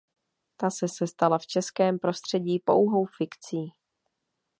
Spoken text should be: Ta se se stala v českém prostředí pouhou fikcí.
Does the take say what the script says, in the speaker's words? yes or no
yes